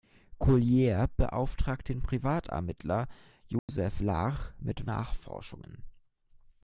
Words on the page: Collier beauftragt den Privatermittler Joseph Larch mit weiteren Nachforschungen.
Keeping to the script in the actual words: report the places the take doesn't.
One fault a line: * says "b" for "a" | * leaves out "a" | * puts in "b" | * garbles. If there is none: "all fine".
* leaves out "weiteren"